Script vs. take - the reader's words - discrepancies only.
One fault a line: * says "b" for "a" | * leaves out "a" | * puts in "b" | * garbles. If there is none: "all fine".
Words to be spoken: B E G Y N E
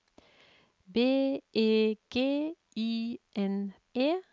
all fine